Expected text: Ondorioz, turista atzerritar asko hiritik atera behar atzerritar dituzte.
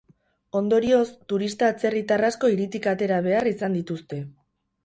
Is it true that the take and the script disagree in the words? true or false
true